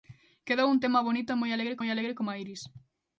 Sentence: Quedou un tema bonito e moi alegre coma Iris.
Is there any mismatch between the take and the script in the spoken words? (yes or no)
yes